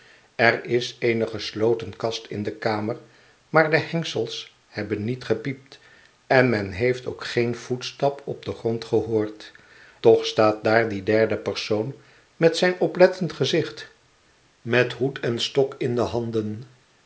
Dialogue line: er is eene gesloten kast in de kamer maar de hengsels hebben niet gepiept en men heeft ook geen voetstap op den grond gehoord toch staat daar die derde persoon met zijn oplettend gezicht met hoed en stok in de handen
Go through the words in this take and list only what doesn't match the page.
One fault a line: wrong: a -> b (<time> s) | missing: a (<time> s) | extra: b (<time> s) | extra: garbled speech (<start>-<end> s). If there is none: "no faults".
no faults